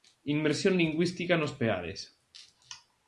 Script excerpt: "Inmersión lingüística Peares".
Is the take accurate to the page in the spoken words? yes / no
no